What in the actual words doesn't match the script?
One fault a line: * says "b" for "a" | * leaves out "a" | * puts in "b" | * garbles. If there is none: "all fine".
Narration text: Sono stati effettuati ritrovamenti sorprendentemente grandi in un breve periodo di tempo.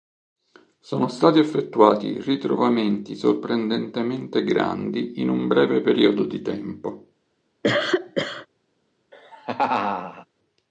all fine